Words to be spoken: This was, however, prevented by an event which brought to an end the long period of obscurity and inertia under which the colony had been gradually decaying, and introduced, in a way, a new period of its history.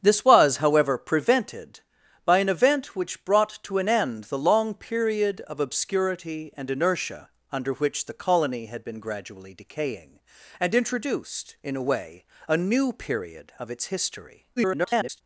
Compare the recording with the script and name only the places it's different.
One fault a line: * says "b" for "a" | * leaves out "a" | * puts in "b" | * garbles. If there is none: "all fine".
* garbles